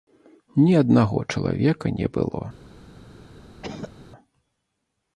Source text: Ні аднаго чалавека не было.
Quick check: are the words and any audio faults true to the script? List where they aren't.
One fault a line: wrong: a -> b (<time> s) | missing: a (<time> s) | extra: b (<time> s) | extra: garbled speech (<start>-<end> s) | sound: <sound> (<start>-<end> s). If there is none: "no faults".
sound: cough (3.6-3.9 s)